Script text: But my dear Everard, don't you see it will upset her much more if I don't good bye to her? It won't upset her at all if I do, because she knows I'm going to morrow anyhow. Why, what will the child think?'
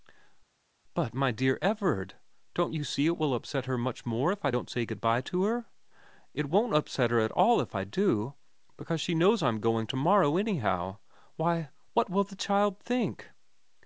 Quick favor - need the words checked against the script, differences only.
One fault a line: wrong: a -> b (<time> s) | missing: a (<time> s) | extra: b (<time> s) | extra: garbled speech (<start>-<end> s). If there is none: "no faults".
extra: say (4.7 s)